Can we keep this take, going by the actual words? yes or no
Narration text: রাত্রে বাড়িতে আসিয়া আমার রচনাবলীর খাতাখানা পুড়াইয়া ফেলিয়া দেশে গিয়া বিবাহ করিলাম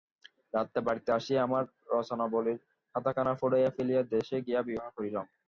yes